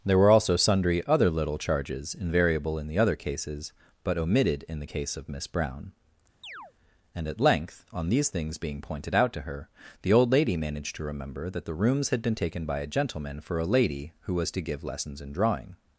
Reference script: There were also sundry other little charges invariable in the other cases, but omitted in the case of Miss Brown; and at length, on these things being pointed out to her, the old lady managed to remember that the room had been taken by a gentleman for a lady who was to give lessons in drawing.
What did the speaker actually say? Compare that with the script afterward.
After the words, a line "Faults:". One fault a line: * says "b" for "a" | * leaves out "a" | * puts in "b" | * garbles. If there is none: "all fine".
There were also sundry other little charges invariable in the other cases, but omitted in the case of Miss Brown; and at length, on these things being pointed out to her, the old lady managed to remember that the rooms had been taken by a gentleman for a lady who was to give lessons in drawing.
Faults:
* says "rooms" for "room"